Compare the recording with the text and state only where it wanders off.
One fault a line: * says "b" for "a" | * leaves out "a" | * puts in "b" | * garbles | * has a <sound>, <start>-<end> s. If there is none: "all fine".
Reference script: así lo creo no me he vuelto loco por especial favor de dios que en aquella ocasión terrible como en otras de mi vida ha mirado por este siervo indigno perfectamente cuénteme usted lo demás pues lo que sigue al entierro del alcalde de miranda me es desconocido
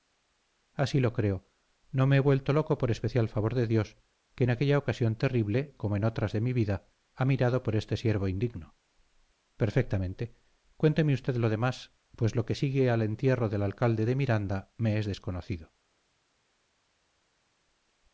all fine